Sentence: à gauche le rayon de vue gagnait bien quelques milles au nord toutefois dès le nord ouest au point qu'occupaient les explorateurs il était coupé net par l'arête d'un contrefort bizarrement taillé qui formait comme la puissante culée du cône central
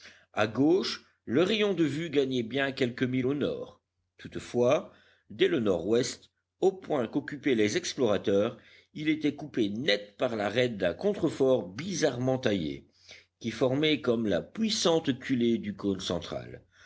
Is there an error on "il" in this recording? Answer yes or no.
no